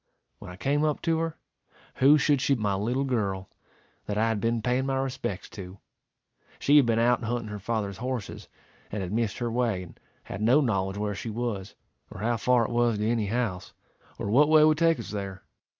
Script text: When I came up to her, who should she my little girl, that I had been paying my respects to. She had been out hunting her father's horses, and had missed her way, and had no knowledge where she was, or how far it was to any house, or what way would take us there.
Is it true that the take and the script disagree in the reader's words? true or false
false